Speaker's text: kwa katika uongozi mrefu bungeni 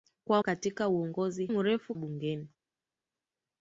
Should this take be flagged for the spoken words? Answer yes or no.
no